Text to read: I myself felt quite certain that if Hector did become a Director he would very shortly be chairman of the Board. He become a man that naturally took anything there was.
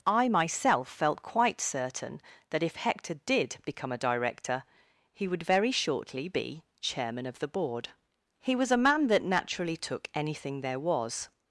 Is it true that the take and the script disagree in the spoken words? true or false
true